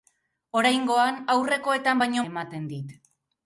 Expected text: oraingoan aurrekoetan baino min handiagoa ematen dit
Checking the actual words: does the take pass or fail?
fail